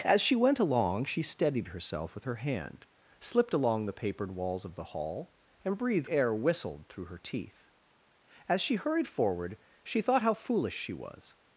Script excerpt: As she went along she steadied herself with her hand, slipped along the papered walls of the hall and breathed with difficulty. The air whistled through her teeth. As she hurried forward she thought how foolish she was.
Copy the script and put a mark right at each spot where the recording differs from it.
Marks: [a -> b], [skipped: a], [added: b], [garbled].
As she went along she steadied herself with her hand, slipped along the papered walls of the hall and breathed [skipped: with difficulty. The] air whistled through her teeth. As she hurried forward she thought how foolish she was.